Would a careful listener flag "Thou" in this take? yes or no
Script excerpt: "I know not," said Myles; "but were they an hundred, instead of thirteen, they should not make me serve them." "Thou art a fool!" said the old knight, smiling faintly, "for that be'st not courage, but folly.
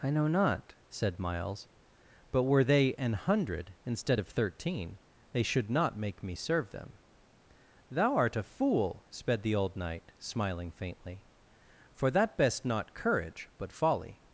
no